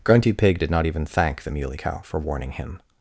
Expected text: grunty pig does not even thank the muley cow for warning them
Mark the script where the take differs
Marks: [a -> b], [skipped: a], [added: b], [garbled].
grunty pig [does -> did] not even thank the muley cow for warning [them -> him]